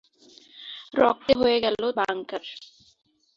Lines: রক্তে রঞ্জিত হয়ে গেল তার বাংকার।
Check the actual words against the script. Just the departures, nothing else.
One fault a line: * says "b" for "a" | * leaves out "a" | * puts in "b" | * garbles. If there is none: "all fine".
* leaves out "রঞ্জিত"
* leaves out "তার"